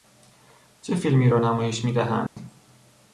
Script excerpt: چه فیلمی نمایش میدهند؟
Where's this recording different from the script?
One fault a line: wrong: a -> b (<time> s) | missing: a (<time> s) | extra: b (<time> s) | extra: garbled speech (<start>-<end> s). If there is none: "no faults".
extra: را (1.3 s)